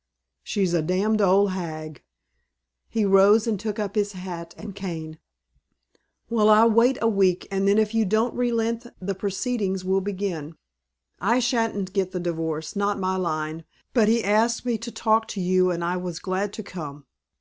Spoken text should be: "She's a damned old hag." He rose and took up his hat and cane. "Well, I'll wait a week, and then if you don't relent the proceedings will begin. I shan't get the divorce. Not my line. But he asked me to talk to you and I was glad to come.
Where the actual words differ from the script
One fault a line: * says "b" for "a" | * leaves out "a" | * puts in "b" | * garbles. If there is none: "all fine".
all fine